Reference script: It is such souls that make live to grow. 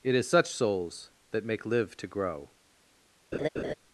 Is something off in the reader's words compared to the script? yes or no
no